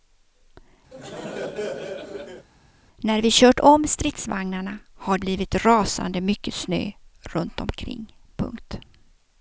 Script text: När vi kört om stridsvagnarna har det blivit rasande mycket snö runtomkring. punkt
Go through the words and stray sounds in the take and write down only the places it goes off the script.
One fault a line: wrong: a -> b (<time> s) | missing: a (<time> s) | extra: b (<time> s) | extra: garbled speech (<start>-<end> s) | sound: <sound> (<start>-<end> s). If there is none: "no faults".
sound: laugh (0.9-2.5 s)
missing: det (5.2 s)